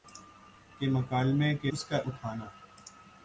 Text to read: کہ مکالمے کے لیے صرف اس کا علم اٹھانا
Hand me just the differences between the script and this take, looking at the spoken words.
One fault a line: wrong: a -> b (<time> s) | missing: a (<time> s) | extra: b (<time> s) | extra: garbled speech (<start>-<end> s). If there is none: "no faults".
missing: لیے صرف (1.7 s)
missing: علم (2.0 s)